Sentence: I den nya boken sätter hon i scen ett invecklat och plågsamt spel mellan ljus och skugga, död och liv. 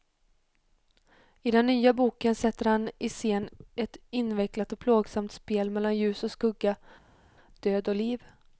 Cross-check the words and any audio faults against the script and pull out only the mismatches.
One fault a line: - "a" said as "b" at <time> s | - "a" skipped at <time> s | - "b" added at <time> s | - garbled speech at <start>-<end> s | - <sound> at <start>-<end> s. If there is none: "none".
- "hon" said as "han" at 2.7 s